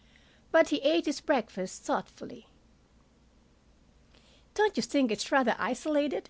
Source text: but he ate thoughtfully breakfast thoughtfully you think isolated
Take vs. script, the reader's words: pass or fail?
fail